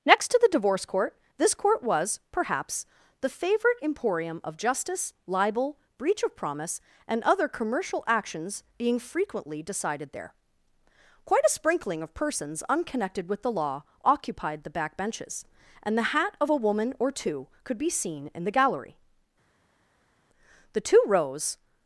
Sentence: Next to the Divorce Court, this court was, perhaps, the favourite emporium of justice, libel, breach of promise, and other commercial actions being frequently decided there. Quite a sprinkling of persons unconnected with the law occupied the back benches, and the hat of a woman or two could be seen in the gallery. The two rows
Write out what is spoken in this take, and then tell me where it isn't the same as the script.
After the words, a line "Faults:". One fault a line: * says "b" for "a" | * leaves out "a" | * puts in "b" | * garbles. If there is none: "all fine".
Next to the Divorce Court, this court was, perhaps, the favourite emporium of justice, libel, breach of promise, and other commercial actions being frequently decided there. Quite a sprinkling of persons unconnected with the law occupied the back benches, and the hat of a woman or two could be seen in the gallery. The two rows
Faults:
all fine